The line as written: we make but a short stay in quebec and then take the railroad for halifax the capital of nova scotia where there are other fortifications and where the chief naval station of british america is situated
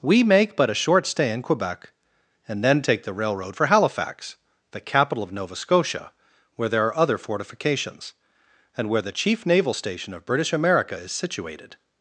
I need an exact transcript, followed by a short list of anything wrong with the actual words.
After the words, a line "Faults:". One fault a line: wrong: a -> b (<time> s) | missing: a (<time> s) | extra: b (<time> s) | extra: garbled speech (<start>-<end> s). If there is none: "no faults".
we make but a short stay in quebec and then take the railroad for halifax the capital of nova scotia where there are other fortifications and where the chief naval station of british america is situated
Faults:
no faults